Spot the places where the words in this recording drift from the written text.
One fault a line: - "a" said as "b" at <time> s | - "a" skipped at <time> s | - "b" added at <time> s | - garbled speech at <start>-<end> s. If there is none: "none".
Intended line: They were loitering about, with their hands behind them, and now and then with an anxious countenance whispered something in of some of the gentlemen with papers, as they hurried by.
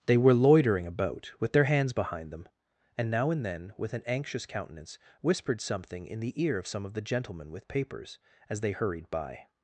- "the ear" added at 6.2 s